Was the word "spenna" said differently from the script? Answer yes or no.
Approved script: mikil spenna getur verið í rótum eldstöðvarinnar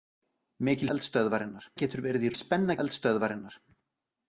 yes